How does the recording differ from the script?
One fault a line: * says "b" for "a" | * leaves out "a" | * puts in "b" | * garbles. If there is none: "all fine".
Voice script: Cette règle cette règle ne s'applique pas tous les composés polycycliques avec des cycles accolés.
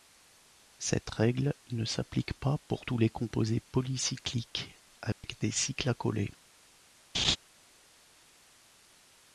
* leaves out "cette règle"
* puts in "pour"